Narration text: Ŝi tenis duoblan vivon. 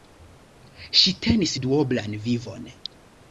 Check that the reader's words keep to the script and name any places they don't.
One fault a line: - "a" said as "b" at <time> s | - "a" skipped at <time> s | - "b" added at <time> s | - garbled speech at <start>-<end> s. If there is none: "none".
none